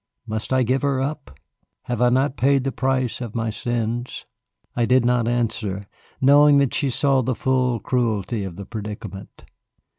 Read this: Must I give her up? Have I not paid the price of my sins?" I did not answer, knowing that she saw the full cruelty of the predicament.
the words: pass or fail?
pass